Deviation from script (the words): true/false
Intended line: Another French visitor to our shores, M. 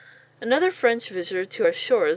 false